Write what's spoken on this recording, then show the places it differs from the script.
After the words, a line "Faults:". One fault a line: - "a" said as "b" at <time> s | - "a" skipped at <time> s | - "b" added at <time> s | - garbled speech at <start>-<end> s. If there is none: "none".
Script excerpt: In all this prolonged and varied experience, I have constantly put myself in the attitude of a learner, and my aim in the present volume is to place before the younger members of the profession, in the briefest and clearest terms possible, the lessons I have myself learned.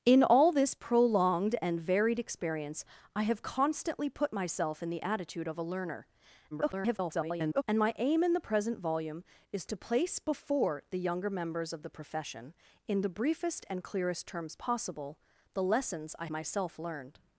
In all this prolonged and varied experience, I have constantly put myself in the attitude of a learner, [garbled] and my aim in the present volume is to place before the younger members of the profession, in the briefest and clearest terms possible, the lessons I myself learned.
Faults:
- garbled speech at 6.5-7.6 s
- "have" skipped at 16.3 s